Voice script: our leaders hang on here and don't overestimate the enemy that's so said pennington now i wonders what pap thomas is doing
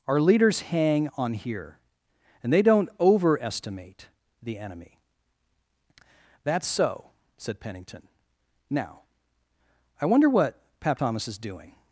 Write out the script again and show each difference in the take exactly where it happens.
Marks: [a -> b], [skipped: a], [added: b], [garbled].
our leaders hang on here and [added: they] don't overestimate the enemy that's so said pennington now i [wonders -> wonder] what pap thomas is doing